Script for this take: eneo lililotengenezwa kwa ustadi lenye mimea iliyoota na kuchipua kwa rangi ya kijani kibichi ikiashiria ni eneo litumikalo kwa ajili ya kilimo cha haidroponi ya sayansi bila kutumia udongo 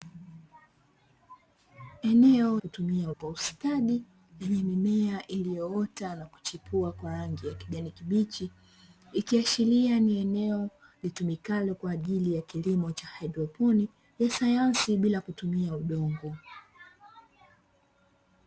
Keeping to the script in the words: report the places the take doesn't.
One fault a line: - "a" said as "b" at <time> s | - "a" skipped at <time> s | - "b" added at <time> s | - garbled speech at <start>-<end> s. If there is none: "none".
- "lililotengenezwa" said as "kutumia" at 2.6 s